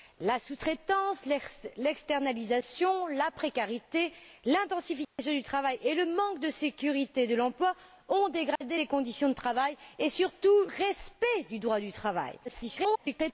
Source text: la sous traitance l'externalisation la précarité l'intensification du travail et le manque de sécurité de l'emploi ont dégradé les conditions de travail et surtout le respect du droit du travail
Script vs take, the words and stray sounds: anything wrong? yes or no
yes